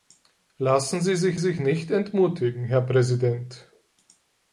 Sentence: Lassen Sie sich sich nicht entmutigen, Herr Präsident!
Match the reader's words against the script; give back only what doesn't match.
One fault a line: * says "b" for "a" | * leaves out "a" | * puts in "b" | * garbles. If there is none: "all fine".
all fine